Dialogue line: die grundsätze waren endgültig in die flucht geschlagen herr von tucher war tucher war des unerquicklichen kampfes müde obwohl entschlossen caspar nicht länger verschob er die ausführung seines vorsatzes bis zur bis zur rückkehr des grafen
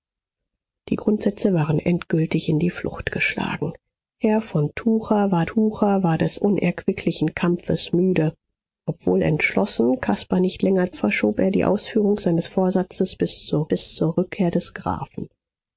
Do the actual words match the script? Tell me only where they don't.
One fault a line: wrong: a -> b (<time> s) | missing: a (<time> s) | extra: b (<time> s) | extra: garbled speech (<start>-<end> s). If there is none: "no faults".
no faults